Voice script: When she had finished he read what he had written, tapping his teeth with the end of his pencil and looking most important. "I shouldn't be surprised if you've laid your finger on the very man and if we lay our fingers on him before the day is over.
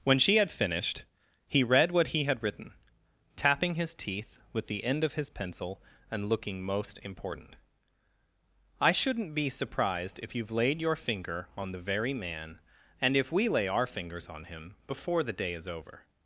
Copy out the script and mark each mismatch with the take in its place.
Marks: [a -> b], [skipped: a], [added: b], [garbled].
When she had finished he read what he had written, tapping his teeth with the end of his pencil and looking most important. "I shouldn't be surprised if you've laid your finger on the very man and if we lay our fingers on him before the day is over.